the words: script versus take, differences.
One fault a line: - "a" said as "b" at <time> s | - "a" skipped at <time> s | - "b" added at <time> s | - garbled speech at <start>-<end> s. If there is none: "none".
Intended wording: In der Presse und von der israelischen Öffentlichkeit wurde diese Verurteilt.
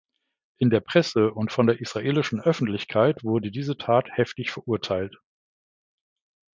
- "Tat heftig" added at 3.8 s